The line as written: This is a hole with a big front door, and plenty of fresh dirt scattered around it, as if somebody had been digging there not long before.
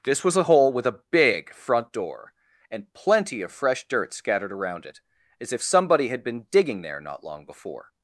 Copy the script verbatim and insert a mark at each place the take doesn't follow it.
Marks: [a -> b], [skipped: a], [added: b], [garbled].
This [is -> was] a hole with a big front door, and plenty of fresh dirt scattered around it, as if somebody had been digging there not long before.